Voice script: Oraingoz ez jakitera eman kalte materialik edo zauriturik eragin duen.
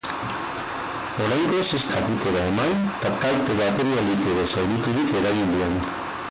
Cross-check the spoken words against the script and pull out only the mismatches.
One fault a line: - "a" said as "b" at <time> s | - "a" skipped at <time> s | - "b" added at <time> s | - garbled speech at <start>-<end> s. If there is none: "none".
none